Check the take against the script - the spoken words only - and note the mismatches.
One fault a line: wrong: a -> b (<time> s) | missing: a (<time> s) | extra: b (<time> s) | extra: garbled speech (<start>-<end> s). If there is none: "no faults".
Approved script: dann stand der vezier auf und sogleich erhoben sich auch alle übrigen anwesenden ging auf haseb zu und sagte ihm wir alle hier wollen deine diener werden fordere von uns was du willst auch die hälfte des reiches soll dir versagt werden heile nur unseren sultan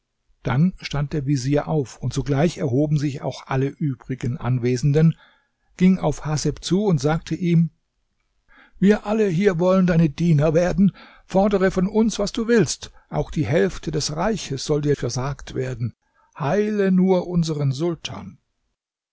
no faults